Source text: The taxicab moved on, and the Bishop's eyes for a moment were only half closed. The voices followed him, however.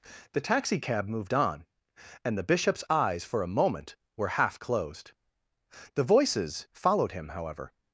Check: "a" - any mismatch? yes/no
no